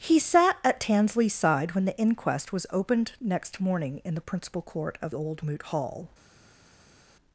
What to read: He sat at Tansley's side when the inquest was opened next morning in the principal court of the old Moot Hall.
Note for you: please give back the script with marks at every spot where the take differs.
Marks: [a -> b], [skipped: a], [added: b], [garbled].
He sat at Tansley's side when the inquest was opened next morning in the principal court of [skipped: the] old Moot Hall.